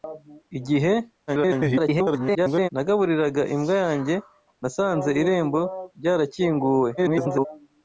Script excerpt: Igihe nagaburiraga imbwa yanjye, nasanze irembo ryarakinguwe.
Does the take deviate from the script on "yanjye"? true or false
false